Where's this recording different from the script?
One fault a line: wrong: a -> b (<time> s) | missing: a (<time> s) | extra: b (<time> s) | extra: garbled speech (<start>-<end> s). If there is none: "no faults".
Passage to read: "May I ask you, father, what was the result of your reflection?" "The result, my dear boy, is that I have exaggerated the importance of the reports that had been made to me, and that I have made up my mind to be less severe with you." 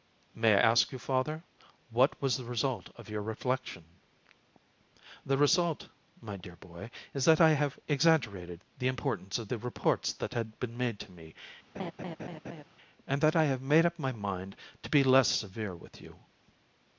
no faults